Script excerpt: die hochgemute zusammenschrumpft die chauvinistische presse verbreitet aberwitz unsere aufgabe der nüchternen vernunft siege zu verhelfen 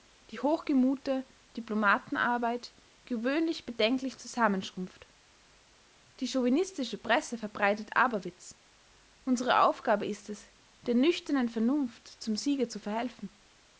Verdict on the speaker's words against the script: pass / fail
fail